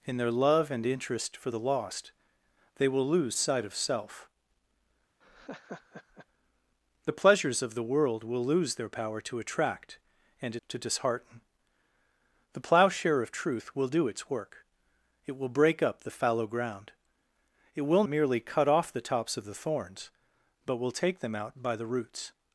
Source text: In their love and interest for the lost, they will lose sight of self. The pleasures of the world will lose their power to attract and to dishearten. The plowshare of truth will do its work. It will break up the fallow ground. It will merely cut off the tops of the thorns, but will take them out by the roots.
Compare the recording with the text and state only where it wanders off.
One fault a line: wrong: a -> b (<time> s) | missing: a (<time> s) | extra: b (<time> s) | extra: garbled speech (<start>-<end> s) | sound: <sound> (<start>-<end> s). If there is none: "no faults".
sound: laugh (5.2-6.3 s)